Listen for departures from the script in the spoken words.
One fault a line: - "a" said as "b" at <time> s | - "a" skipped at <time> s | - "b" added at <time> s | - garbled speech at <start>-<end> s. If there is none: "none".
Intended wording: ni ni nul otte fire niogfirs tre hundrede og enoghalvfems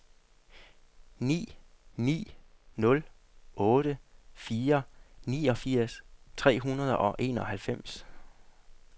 none